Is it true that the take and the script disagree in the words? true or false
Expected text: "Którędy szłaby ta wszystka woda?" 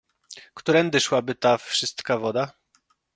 false